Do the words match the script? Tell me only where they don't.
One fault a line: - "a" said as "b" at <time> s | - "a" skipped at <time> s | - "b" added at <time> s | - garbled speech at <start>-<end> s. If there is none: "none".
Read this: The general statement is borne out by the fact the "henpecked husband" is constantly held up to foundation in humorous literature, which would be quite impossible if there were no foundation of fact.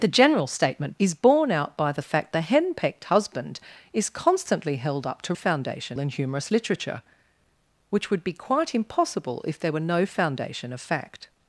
none